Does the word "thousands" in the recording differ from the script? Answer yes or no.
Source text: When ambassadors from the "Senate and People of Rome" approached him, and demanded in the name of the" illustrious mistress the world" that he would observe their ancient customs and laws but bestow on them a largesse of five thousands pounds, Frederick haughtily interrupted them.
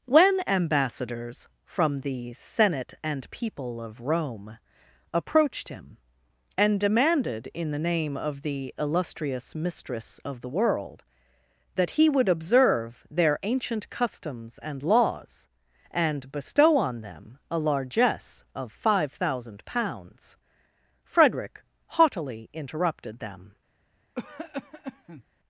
yes